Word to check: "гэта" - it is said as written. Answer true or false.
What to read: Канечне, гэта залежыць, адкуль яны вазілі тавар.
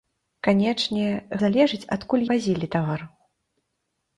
false